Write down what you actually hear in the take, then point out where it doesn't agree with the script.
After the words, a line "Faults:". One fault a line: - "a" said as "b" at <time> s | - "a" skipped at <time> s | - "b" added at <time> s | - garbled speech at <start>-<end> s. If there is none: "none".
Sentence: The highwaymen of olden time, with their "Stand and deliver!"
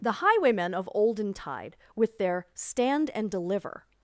The highwaymen of olden tide, with their "Stand and deliver!"
Faults:
- "time" said as "tide" at 1.3 s